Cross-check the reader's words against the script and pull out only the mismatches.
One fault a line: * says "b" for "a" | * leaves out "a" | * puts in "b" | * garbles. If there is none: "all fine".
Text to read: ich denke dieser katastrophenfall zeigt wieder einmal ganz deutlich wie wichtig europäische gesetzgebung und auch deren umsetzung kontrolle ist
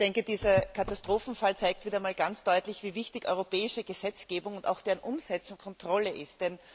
all fine